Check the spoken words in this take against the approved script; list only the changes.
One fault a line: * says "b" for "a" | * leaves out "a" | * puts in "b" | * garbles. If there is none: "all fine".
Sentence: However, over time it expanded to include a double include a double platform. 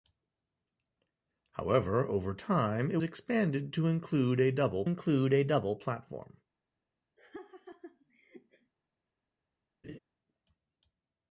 all fine